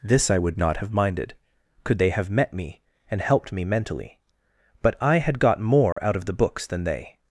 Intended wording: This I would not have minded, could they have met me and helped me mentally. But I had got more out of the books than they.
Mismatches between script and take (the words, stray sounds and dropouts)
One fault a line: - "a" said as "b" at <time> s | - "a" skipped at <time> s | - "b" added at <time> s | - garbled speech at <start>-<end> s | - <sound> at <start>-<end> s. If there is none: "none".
- dropout at 5.9-6.0 s